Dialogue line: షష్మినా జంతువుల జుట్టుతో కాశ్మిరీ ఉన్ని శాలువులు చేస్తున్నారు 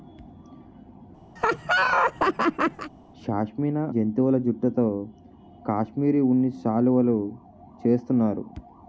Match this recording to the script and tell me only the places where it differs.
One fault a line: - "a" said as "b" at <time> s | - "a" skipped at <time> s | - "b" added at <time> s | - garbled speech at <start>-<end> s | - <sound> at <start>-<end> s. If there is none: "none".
- laugh at 1.4-2.9 s